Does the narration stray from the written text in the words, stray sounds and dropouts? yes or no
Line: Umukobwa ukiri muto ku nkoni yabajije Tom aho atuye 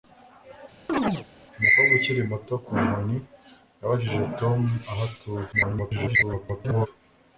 yes